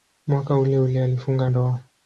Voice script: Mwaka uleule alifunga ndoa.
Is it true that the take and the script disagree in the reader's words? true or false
false